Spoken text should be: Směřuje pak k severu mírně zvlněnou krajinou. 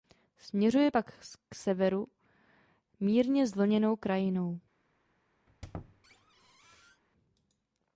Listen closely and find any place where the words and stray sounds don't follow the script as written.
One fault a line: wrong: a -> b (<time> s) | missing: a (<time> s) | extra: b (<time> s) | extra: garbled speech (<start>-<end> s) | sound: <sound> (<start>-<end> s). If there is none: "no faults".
sound: squeak (5.5-7.0 s)